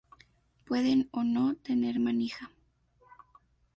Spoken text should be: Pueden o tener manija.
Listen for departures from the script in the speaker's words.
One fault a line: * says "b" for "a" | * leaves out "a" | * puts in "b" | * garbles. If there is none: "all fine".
* puts in "no"